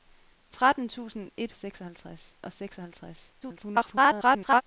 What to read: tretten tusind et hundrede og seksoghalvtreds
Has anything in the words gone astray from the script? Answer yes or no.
yes